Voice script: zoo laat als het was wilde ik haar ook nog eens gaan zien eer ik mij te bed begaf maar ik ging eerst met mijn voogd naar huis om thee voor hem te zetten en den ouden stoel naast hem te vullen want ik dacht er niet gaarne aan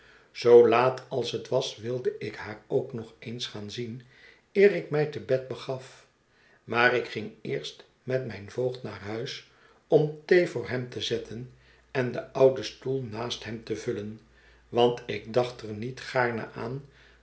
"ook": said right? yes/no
yes